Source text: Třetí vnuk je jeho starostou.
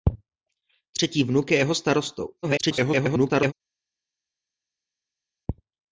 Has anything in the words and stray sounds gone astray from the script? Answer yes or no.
yes